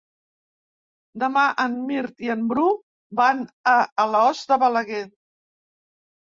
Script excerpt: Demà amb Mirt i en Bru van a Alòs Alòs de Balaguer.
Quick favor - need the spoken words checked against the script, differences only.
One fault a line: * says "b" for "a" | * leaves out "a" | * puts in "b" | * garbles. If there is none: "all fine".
* says "en" for "amb"
* leaves out "Alòs"